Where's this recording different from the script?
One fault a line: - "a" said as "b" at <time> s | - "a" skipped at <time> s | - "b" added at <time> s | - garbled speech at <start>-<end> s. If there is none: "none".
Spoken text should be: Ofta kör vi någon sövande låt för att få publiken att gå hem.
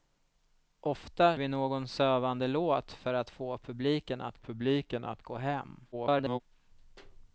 - "kör" skipped at 1.4 s
- "publiken att" added at 4.4 s
- garbled speech at 5.9-6.4 s